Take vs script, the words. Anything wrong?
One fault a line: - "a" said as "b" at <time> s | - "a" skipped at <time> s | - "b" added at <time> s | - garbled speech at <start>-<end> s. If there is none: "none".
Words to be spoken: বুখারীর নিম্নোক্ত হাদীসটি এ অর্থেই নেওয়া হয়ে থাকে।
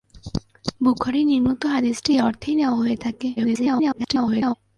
- garbled speech at 3.4-4.5 s